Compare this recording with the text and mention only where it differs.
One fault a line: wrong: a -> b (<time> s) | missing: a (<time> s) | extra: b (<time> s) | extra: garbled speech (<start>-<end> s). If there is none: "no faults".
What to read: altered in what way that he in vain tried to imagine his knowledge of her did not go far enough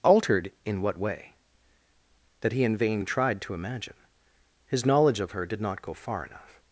no faults